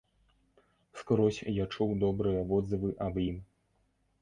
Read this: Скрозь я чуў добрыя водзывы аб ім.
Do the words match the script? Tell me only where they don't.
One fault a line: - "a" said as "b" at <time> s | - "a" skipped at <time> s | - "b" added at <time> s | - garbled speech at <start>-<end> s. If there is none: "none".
none